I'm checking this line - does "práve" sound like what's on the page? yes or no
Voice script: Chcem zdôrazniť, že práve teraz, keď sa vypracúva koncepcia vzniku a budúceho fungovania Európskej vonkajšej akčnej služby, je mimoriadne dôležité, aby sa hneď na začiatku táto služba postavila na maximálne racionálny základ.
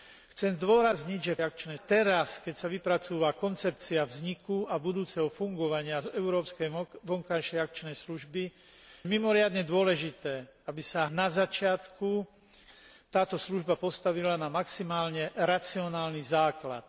no